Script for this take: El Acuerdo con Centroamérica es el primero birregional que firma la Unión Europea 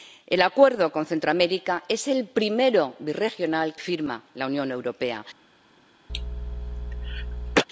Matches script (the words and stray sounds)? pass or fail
fail